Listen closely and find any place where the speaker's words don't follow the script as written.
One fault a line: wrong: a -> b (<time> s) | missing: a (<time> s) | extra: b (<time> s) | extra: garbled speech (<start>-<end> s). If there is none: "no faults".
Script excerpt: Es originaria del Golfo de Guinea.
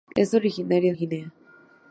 missing: del Golfo de (0.9 s)